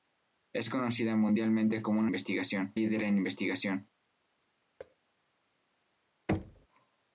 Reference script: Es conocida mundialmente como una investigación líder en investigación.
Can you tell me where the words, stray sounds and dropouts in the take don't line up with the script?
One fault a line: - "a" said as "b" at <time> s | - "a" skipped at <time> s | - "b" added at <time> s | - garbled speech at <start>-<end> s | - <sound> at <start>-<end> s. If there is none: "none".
- thud at 4.8-5.0 s
- thud at 6.3-6.7 s